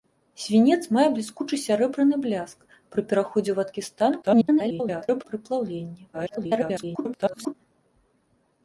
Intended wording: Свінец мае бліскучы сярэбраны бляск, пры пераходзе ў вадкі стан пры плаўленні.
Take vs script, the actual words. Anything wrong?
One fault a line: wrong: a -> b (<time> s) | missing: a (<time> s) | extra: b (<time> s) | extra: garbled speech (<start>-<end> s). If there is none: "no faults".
extra: garbled speech (4.2-5.2 s)
extra: garbled speech (6.1-7.5 s)